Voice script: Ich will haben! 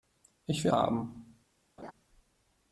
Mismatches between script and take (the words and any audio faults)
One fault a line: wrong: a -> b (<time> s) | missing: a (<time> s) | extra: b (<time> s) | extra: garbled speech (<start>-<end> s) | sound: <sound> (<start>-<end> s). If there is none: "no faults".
sound: laugh (1.8-1.9 s)